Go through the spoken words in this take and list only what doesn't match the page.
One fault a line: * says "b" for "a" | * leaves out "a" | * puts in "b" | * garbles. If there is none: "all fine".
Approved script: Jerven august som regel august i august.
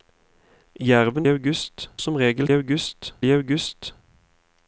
all fine